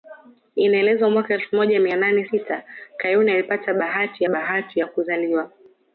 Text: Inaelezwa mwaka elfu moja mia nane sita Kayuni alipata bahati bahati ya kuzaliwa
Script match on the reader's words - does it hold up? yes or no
yes